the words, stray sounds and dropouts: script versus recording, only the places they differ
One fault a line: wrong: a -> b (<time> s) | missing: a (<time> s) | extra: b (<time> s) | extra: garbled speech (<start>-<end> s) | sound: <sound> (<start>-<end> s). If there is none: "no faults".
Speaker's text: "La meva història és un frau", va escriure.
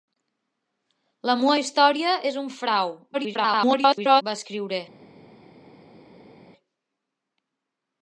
extra: garbled speech (3.1-4.2 s)